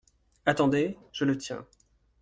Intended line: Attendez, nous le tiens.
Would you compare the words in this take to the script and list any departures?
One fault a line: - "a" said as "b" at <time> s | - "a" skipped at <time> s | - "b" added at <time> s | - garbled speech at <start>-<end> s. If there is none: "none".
- "nous" said as "je" at 1.1 s